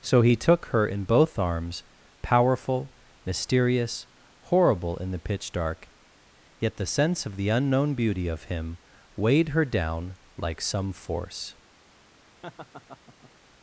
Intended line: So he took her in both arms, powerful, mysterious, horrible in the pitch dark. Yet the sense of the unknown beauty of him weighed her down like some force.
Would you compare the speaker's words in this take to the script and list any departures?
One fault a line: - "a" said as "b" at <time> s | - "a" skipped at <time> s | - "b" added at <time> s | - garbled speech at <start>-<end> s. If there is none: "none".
none